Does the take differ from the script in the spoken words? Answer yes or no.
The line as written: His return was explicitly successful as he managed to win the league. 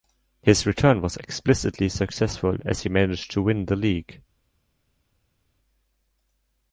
no